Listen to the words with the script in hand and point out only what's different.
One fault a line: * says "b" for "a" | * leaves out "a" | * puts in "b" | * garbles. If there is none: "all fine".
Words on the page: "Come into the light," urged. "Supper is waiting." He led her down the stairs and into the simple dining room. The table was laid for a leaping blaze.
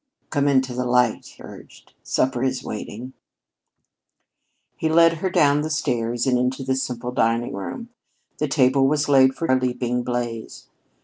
all fine